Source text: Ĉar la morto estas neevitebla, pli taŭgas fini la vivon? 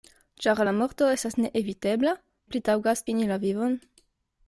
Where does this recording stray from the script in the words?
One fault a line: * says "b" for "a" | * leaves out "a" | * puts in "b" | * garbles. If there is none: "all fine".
all fine